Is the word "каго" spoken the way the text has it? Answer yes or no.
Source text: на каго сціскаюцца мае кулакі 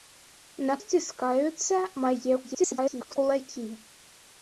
no